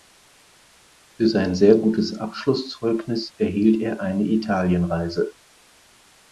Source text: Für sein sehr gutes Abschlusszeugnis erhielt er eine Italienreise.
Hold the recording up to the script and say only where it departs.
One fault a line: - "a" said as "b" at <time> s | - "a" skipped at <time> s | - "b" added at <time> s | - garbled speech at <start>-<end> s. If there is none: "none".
none